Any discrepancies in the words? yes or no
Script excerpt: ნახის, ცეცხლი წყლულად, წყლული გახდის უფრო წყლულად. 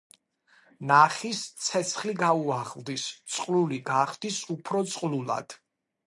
yes